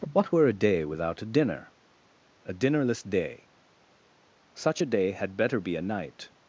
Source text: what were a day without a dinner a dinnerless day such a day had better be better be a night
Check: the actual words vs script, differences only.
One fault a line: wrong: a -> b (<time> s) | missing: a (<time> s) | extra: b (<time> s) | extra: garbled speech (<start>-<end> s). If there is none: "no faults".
missing: better be (5.8 s)